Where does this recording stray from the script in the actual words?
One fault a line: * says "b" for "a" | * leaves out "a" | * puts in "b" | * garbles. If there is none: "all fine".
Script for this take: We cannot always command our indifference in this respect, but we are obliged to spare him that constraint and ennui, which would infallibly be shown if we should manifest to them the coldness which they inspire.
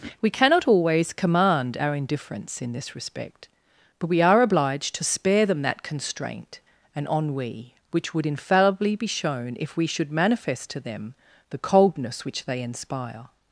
* says "them" for "him"